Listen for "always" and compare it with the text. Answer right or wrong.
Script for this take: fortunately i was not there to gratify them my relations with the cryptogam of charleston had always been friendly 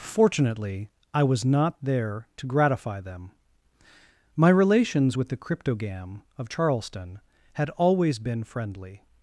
right